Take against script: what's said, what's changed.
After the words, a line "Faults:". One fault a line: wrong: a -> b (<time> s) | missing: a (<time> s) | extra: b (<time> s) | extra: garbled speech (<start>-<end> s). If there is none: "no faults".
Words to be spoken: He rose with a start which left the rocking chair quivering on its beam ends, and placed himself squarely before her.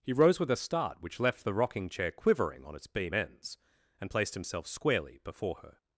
He rose with a start which left the rocking chair quivering on its beam ends, and placed himself squarely before her.
Faults:
no faults